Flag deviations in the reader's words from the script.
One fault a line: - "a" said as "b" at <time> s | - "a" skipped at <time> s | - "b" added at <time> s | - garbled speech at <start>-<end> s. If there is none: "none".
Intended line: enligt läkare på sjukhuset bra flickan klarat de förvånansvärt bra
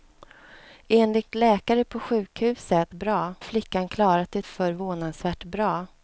none